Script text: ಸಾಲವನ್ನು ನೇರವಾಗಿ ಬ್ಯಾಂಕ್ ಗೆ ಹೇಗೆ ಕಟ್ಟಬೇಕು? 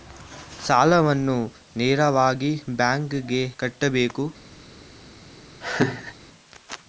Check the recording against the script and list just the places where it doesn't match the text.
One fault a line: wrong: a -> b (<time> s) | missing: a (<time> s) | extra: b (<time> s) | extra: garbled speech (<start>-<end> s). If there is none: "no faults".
missing: ಹೇಗೆ (3.4 s)